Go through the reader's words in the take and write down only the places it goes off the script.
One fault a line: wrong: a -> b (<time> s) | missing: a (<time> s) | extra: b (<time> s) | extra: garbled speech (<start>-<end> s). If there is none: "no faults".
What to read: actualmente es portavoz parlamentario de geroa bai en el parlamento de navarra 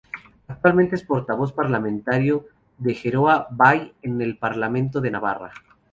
no faults